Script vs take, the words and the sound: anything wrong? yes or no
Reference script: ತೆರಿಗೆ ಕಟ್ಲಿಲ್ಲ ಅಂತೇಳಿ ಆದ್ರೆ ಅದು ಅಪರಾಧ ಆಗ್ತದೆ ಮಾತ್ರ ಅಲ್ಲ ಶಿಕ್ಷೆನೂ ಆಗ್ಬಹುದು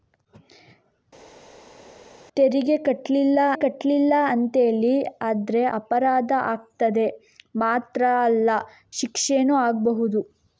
yes